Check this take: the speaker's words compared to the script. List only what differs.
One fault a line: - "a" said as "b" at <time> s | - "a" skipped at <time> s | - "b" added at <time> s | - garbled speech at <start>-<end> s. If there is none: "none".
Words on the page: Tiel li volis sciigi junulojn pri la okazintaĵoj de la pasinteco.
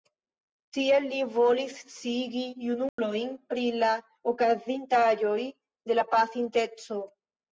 none